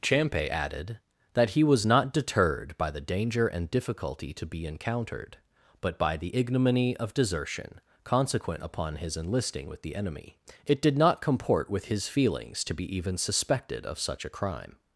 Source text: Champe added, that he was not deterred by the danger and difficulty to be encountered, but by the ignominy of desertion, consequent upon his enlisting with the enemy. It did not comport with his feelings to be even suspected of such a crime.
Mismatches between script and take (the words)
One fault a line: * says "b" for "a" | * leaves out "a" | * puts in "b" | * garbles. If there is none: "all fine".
all fine